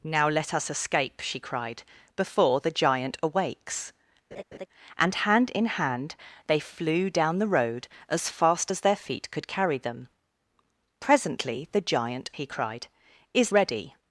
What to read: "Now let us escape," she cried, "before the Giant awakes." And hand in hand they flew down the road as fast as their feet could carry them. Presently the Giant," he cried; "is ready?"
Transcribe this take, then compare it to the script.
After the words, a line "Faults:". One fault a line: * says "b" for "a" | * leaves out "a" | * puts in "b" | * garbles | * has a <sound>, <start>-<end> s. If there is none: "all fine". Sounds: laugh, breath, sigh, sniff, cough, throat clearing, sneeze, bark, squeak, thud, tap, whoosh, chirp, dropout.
"Now let us escape," she cried, "before the Giant awakes." And hand in hand they flew down the road as fast as their feet could carry them. Presently the Giant," he cried; "is ready?"
Faults:
* has a laugh, 4.3-4.7 s